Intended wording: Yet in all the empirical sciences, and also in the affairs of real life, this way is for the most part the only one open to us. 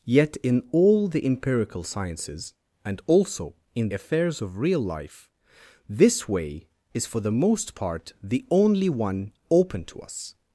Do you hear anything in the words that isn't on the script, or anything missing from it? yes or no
yes